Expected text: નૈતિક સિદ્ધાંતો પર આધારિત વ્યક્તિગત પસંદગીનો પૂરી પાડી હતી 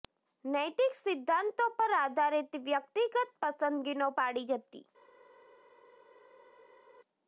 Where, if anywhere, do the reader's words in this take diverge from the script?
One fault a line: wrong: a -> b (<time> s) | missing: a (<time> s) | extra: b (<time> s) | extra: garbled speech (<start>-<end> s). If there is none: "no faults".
missing: પૂરી (4.1 s)